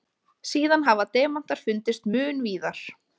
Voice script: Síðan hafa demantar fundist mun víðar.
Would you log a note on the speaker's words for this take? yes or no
no